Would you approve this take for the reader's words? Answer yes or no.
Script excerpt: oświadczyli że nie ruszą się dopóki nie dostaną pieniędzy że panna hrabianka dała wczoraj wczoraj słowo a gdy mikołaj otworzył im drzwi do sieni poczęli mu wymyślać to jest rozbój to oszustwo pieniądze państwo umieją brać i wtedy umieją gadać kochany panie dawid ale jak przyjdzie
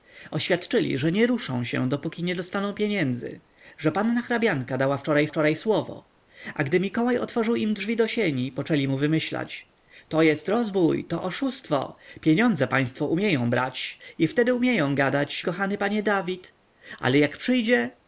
yes